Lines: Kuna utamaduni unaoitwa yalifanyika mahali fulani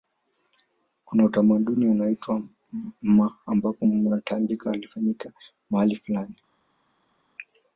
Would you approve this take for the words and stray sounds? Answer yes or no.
no